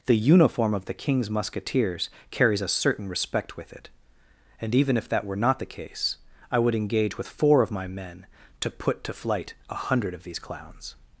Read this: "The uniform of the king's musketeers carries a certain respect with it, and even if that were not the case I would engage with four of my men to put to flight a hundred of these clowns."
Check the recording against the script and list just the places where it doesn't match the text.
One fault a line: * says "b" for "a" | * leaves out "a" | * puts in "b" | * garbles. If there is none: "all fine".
all fine